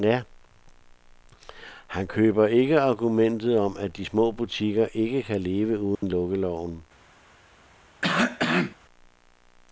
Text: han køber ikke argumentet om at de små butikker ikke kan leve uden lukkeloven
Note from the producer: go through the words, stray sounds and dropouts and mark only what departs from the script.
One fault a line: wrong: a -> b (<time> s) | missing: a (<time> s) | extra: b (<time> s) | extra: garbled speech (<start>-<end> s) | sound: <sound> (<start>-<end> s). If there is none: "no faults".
sound: dropout (5.9-6.0 s)
sound: cough (8.0-8.8 s)